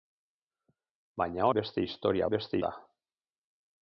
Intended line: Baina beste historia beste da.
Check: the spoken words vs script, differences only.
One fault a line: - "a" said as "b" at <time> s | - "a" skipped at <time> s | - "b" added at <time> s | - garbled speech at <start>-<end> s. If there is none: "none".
none